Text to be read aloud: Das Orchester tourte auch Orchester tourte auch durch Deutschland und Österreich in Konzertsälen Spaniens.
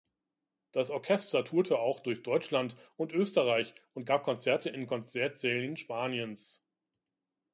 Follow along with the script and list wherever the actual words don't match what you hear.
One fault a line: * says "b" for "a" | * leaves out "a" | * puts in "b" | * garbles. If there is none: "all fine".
* leaves out "Orchester tourte auch"
* puts in "und gab Konzerte"